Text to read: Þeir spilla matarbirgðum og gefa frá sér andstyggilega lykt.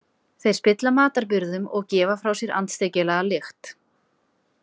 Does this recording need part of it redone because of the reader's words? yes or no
no